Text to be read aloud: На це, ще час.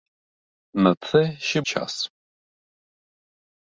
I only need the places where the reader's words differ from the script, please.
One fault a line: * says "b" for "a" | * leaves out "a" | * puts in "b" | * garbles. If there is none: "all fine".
all fine